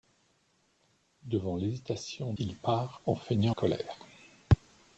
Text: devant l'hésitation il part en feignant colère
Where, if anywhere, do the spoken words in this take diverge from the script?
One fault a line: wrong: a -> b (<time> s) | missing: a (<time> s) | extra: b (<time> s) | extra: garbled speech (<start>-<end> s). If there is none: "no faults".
no faults